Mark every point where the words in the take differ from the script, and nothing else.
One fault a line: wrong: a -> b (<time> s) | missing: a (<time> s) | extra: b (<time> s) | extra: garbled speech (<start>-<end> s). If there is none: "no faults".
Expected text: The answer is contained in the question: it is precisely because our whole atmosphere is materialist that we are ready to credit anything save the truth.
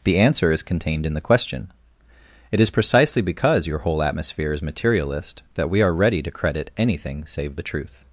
wrong: our -> your (3.7 s)